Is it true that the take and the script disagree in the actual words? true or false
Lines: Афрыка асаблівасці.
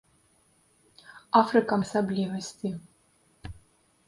false